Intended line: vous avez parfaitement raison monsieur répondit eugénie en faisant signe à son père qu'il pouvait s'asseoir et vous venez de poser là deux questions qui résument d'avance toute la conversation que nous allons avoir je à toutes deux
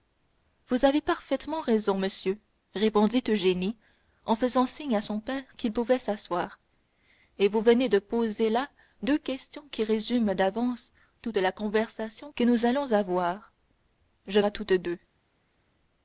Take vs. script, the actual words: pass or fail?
pass